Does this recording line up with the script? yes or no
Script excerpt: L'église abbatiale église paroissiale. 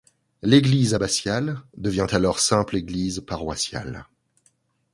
no